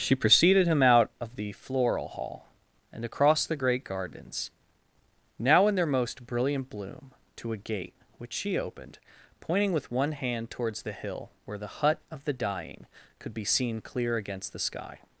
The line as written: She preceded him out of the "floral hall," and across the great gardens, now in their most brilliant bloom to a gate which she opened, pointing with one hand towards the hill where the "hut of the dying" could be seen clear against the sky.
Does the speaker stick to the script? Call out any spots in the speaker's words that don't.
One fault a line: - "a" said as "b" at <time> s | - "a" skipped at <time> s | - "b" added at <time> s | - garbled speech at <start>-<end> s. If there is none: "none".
none